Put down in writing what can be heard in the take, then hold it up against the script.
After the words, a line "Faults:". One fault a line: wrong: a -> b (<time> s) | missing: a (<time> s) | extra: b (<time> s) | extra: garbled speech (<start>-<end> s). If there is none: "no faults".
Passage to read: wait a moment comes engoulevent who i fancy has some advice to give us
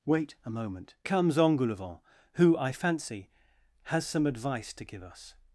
wait a moment comes engoulevent who i fancy has some advice to give us
Faults:
no faults